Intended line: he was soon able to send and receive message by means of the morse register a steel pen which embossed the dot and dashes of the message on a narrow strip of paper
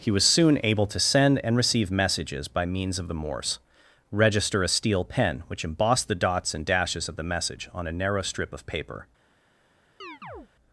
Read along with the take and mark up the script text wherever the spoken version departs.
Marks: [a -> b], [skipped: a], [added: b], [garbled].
he was soon able to send and receive [message -> messages] by means of the morse register a steel pen which embossed the [dot -> dots] and dashes of the message on a narrow strip of paper